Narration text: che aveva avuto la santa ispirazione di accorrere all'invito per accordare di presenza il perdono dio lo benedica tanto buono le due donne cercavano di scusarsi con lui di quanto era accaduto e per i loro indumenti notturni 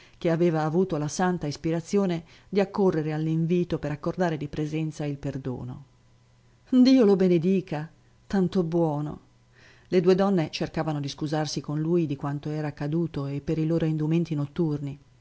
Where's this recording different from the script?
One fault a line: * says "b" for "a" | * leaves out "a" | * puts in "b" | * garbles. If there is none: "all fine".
all fine